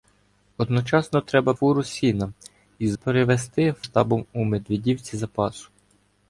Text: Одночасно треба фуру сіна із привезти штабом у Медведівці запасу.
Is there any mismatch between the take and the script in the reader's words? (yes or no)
no